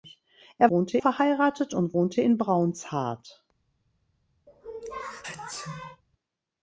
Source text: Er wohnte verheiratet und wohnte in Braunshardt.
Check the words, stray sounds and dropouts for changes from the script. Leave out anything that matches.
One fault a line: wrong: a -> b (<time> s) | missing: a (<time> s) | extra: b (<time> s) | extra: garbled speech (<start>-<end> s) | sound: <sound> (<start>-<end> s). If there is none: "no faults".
sound: sneeze (4.5-6.0 s)